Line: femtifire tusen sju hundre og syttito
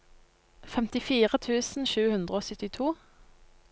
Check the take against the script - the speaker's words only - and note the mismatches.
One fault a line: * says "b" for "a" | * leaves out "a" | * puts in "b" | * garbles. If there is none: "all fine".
all fine